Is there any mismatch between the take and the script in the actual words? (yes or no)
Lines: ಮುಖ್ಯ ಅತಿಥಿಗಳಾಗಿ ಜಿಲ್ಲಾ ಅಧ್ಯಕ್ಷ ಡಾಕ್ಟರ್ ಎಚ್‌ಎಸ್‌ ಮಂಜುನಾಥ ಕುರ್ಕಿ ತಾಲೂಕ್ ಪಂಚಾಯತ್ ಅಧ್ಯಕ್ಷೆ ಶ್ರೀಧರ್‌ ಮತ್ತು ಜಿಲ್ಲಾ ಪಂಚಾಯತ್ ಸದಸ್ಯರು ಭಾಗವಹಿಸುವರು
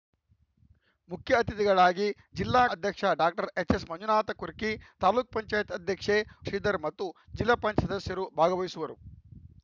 no